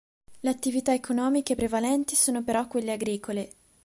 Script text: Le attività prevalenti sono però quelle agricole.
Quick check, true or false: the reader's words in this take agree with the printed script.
false